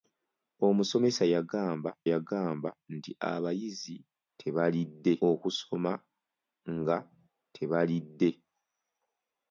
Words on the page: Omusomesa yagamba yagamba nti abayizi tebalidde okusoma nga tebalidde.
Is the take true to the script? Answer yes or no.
yes